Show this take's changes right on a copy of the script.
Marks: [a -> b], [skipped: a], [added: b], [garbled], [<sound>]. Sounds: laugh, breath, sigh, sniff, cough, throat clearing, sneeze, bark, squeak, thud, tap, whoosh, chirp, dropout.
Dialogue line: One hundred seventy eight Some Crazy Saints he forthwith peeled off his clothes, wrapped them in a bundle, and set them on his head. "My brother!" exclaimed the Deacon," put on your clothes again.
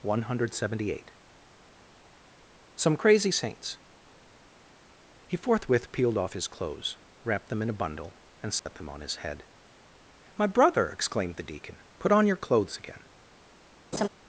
One hundred seventy eight Some Crazy Saints he forthwith peeled off his clothes, wrapped them in a bundle, and set [dropout] them on his head. "My brother!" exclaimed the Deacon," put on your clothes again. [laugh]